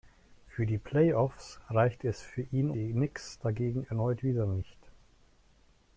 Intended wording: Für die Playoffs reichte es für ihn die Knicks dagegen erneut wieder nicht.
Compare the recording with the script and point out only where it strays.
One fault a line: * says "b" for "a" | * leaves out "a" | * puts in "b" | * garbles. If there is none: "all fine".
all fine